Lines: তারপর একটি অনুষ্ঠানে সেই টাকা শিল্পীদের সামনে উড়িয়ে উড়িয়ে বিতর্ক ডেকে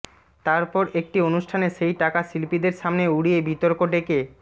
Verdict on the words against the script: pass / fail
fail